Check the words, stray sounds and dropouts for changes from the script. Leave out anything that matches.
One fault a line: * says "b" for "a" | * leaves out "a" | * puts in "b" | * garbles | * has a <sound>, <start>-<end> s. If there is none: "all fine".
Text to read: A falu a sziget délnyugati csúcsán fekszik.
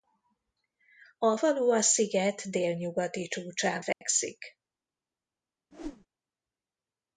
* has a dropout, 3.9-4.0 s
* has a whoosh, 5.7-6.1 s